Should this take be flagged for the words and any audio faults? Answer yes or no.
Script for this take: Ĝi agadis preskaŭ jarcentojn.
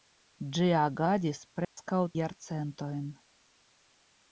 yes